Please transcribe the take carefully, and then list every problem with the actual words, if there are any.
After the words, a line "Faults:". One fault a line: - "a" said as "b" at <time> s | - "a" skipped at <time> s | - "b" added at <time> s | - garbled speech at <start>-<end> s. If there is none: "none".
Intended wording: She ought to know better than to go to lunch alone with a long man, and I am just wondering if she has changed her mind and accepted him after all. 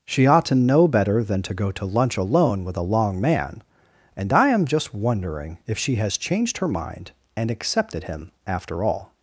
She ought to know better than to go to lunch alone with a long man, and I am just wondering if she has changed her mind and accepted him after all.
Faults:
none